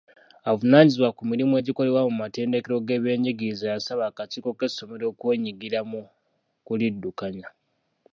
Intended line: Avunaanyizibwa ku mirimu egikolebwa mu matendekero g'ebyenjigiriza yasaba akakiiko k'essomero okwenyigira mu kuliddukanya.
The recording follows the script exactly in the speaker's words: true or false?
true